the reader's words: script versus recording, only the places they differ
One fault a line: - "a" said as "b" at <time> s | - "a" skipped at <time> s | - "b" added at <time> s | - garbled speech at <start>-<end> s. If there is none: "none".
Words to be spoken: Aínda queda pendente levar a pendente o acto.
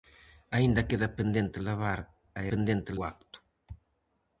none